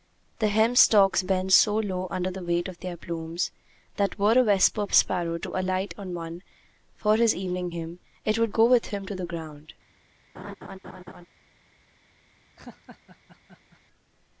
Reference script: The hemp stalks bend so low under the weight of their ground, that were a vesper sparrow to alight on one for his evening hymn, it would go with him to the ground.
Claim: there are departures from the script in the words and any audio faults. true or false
true